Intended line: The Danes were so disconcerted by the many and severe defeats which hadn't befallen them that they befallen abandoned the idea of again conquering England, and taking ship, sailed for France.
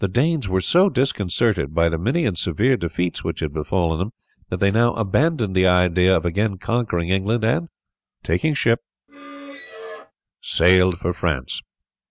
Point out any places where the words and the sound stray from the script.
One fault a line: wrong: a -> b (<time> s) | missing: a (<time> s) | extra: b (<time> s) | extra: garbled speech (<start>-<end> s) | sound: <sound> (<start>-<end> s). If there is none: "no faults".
wrong: hadn't -> had (3.4 s)
wrong: befallen -> now (4.7 s)
sound: squeak (9.1-10.1 s)